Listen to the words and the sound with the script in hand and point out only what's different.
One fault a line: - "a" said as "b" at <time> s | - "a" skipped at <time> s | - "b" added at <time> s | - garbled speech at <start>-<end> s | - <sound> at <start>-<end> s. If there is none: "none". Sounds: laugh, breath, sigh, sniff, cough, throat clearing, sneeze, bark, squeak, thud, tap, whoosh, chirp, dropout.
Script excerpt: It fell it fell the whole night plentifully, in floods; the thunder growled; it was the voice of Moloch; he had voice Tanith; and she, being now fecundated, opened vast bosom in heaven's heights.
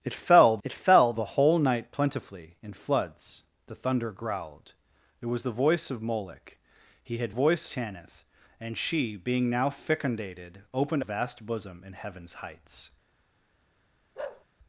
- bark at 14.2-14.5 s